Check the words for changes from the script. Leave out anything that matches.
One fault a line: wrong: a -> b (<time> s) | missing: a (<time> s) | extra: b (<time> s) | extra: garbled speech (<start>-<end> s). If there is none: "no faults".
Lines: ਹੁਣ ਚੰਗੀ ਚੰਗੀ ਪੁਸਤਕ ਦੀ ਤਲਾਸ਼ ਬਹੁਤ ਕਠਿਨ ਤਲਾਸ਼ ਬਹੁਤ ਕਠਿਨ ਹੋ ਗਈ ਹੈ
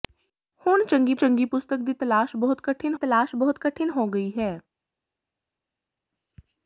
no faults